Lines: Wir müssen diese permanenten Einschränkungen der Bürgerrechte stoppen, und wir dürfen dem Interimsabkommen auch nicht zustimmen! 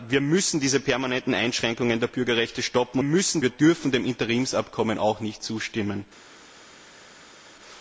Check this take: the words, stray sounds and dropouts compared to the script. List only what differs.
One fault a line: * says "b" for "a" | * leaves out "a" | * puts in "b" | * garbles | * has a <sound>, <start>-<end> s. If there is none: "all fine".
* says "müssen" for "und"